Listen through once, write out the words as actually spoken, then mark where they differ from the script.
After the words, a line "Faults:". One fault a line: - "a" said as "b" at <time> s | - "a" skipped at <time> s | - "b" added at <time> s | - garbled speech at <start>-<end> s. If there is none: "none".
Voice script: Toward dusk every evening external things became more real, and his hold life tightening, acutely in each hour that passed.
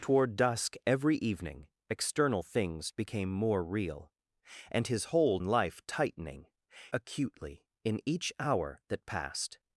Toward dusk every evening external things became more real, and his hold life tightening, acutely in each hour that passed.
Faults:
none